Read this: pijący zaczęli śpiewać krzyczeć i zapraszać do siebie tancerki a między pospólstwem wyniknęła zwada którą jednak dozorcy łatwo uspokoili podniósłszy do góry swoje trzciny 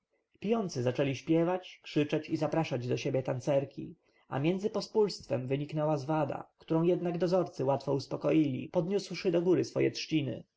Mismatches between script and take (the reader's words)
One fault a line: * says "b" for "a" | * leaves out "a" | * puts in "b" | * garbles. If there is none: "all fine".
all fine